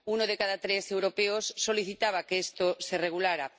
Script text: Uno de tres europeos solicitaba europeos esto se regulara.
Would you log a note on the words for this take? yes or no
yes